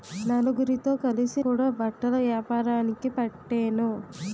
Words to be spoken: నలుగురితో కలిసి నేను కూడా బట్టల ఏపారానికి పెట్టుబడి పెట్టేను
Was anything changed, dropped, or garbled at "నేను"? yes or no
yes